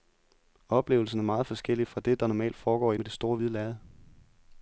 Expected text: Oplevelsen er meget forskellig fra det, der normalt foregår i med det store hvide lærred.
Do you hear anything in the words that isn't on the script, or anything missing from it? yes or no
no